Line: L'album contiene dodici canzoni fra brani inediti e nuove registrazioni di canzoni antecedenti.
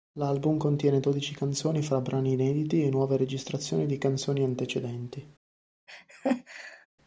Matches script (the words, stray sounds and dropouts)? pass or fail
fail